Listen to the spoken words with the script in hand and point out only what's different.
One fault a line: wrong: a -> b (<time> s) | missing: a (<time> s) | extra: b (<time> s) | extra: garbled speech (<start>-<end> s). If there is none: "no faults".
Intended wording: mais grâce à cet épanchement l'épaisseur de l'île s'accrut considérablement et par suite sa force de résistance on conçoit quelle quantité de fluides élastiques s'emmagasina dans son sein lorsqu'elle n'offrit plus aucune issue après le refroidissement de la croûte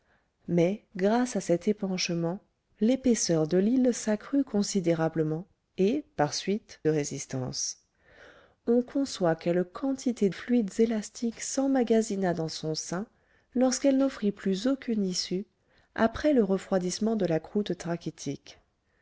missing: sa force de (6.8 s)
missing: de (10.3 s)